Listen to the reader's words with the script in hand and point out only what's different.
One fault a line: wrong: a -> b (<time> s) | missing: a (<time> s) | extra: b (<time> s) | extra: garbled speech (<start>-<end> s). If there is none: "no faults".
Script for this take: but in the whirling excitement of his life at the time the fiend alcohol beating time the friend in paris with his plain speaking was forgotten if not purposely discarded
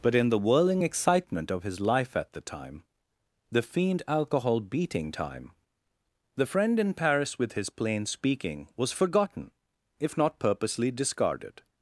no faults